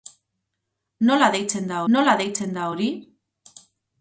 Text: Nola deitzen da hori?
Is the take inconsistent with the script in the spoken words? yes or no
yes